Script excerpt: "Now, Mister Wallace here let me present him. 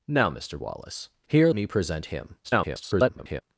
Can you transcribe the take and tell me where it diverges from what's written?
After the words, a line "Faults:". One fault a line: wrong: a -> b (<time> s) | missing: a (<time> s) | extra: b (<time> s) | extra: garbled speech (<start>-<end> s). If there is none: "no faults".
"Now, Mister Wallace here me present him. [garbled]
Faults:
missing: let (1.5 s)
extra: garbled speech (2.4-3.4 s)